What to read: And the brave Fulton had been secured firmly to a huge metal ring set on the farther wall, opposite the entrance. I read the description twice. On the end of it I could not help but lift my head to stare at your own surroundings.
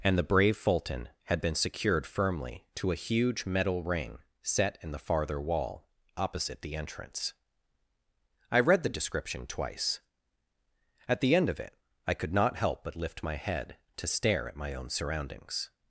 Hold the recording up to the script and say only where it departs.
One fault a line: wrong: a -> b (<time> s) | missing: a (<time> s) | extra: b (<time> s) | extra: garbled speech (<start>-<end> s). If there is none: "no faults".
wrong: on -> in (4.8 s)
wrong: On -> At (11.1 s)
wrong: your -> my (14.6 s)